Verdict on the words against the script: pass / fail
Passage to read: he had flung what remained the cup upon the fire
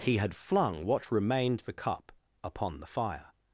pass